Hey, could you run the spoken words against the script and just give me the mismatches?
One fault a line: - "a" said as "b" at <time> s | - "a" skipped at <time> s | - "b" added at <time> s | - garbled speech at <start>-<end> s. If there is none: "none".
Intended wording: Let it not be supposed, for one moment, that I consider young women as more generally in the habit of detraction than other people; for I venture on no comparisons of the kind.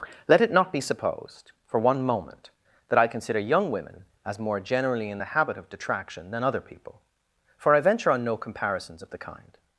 none